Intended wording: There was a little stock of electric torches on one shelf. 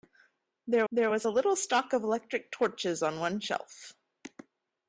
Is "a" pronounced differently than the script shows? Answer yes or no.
no